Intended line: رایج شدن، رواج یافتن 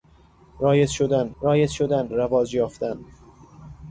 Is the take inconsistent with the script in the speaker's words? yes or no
yes